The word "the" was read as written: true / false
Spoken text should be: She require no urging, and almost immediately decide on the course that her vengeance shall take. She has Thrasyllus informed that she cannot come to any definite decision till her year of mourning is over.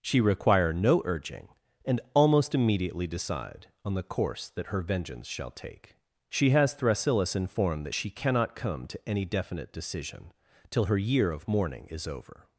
true